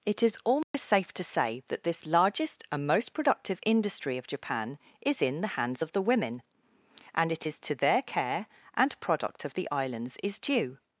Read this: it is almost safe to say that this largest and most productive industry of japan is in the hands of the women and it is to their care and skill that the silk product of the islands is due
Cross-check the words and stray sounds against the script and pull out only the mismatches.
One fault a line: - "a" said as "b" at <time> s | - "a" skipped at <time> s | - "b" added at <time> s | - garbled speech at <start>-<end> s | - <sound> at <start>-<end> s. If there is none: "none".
- dropout at 0.6-0.7 s
- "skill that the silk" skipped at 9.0 s